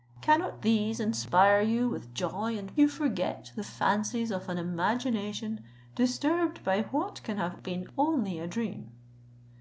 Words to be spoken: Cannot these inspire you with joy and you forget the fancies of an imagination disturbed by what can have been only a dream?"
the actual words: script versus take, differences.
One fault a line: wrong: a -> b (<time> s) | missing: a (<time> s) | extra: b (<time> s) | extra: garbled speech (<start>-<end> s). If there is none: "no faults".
no faults